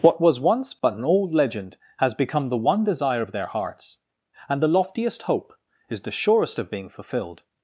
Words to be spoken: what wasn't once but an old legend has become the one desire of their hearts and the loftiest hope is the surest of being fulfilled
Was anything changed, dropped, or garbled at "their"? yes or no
no